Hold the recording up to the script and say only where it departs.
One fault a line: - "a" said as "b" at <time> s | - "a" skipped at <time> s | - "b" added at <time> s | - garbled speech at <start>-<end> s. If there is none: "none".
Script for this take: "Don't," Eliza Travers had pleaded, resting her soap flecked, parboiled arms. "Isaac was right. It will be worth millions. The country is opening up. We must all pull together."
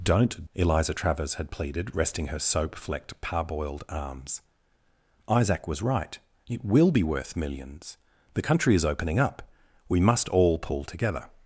none